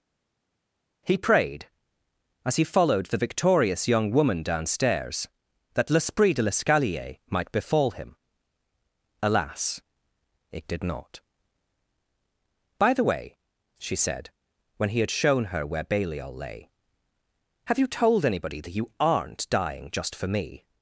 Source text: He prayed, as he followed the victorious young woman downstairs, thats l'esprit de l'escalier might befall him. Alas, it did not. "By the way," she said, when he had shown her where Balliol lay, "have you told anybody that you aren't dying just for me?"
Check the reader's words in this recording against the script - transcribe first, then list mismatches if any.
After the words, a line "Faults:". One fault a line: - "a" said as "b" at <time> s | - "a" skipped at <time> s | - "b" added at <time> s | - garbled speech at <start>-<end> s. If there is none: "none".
He prayed, as he followed the victorious young woman downstairs, that l'esprit de l'escalier might befall him. Alas, it did not. "By the way," she said, when he had shown her where Balliol lay, "have you told anybody that you aren't dying just for me?"
Faults:
- "thats" said as "that" at 5.7 s